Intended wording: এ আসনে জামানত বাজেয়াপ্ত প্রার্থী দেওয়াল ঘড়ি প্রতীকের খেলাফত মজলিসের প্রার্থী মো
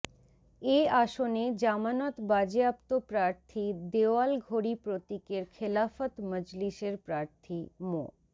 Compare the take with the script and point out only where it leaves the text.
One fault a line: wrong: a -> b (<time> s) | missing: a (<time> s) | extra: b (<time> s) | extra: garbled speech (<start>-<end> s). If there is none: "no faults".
no faults